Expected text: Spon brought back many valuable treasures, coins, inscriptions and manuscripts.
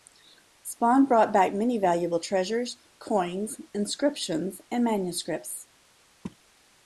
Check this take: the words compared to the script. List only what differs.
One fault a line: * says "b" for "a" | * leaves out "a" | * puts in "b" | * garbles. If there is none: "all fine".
all fine